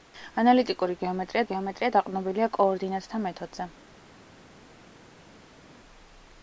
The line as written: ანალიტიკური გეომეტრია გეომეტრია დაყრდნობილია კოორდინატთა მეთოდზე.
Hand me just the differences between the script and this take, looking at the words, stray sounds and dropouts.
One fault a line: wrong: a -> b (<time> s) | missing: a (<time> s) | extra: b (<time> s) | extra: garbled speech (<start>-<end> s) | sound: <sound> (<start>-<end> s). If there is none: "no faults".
no faults